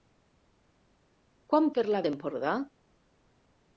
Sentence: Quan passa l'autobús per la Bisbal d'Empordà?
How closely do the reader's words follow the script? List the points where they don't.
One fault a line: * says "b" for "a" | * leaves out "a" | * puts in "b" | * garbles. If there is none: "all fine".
* leaves out "passa l'autobús"
* leaves out "Bisbal"